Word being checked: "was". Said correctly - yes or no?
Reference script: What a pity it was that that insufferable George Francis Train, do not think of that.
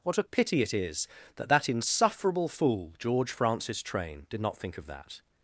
no